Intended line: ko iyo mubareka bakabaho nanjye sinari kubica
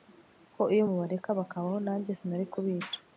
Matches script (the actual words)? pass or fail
pass